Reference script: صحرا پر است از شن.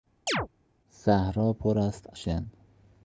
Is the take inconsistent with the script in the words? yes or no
yes